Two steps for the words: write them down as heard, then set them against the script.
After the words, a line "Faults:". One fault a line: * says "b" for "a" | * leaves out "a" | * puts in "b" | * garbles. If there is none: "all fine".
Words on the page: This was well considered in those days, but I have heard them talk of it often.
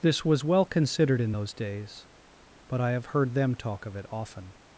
This was well considered in those days, but I have heard them talk of it often.
Faults:
all fine